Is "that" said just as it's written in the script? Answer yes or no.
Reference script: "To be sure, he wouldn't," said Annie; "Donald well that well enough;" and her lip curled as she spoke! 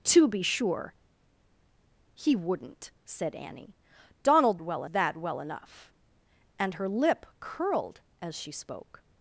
yes